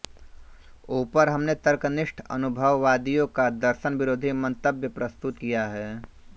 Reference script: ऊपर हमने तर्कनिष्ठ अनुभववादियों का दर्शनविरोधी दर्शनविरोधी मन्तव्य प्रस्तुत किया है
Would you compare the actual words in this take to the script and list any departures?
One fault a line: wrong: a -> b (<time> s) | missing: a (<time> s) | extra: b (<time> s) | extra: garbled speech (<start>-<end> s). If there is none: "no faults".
missing: दर्शनविरोधी (4.3 s)